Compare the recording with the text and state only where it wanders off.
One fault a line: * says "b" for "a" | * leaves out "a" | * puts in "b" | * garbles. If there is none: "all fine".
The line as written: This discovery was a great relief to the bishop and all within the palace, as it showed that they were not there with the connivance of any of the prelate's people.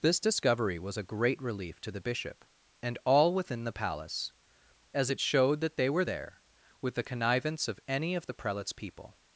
* leaves out "not"